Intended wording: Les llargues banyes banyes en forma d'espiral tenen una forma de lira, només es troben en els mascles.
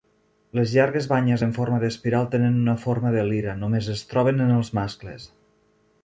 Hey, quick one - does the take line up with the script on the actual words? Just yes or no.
no